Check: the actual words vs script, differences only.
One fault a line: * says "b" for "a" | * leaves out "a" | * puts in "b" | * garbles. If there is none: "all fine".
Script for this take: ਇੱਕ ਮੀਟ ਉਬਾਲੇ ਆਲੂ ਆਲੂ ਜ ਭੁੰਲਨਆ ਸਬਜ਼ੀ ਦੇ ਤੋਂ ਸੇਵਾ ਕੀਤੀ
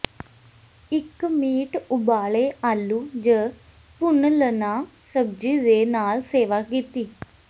* leaves out "ਆਲੂ"
* says "ਨਾਲ" for "ਤੋਂ"